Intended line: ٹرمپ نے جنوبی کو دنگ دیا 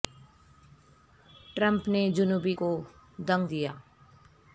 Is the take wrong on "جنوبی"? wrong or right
right